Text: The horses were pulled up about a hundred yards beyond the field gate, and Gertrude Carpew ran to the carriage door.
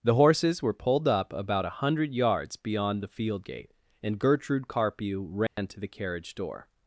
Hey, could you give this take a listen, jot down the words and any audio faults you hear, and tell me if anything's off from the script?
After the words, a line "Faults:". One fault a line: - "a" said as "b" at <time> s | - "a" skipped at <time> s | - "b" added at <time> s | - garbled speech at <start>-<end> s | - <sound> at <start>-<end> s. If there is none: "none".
The horses were pulled up about a hundred yards beyond the field gate, and Gertrude Carpew ran to the carriage door.
Faults:
- dropout at 5.5-5.6 s